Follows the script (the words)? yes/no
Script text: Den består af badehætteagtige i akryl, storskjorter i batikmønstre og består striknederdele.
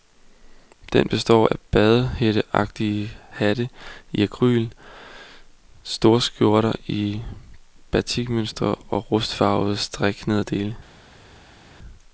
no